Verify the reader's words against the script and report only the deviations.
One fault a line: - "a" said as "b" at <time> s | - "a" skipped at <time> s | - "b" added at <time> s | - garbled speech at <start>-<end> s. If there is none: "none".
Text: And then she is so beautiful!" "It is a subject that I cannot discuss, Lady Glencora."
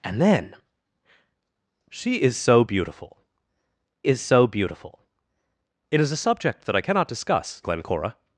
- "is so beautiful" added at 4.1 s
- "Lady" skipped at 7.6 s